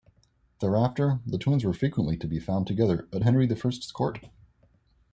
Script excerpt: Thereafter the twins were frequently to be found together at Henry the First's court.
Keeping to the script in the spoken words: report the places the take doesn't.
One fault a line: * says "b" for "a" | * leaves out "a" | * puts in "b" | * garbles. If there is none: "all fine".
all fine